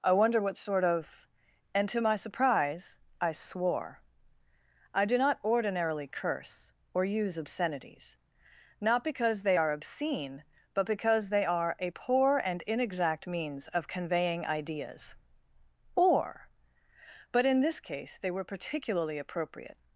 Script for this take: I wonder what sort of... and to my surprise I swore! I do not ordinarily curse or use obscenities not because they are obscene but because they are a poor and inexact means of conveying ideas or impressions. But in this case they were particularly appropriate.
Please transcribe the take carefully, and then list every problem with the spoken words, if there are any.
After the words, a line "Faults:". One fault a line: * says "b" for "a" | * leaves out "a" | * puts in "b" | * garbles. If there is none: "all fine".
I wonder what sort of... and to my surprise I swore! I do not ordinarily curse or use obscenities not because they are obscene but because they are a poor and inexact means of conveying ideas or. But in this case they were particularly appropriate.
Faults:
* leaves out "impressions"